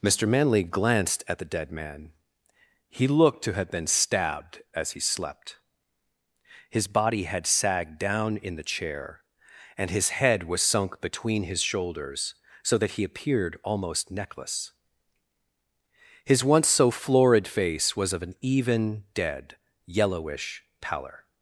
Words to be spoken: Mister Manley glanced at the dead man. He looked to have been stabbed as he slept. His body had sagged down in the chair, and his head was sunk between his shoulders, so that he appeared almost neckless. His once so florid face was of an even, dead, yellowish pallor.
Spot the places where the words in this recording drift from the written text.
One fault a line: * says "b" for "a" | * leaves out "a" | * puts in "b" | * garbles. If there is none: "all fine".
all fine